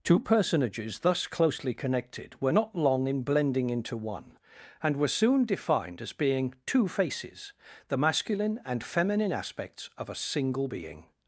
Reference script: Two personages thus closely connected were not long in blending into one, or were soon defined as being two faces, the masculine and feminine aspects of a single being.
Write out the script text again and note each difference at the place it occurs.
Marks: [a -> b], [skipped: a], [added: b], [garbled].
Two personages thus closely connected were not long in blending into one, [or -> and] were soon defined as being two faces, the masculine and feminine aspects of a single being.